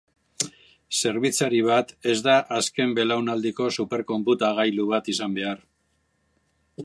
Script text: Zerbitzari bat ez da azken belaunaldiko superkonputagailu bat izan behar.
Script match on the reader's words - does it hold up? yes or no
yes